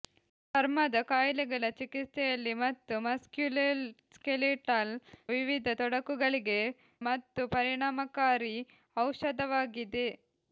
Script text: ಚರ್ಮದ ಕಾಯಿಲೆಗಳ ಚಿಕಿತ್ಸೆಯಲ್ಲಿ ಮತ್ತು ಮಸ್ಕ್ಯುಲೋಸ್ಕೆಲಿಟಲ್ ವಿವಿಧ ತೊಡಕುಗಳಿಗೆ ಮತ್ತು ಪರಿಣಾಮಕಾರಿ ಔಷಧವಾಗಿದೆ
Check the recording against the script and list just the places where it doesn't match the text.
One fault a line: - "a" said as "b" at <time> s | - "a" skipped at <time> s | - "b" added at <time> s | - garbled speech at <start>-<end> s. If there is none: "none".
none